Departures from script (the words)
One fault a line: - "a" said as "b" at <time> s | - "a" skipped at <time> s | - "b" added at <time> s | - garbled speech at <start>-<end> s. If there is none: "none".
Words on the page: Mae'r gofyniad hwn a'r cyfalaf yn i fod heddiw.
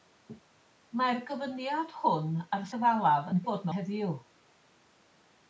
none